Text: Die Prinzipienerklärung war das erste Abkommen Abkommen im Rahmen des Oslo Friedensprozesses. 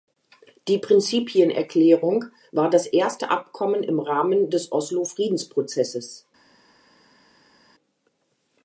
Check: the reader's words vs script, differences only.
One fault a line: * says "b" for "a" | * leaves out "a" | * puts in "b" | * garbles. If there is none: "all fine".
* leaves out "Abkommen"